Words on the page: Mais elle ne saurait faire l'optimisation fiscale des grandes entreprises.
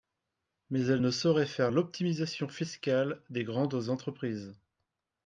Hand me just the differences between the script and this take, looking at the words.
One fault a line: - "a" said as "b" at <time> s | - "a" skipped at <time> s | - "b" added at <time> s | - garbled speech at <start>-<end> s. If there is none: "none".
none